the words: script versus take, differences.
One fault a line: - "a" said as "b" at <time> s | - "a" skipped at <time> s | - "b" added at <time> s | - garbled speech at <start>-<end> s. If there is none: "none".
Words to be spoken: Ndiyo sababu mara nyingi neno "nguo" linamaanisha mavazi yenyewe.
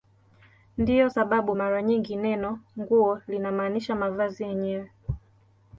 none